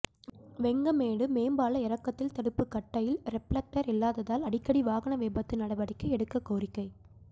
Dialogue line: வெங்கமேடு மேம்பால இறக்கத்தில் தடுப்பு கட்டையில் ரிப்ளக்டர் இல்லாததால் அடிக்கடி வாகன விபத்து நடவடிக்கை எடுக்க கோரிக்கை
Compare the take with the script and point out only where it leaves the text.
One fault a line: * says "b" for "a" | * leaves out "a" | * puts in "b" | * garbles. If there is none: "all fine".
all fine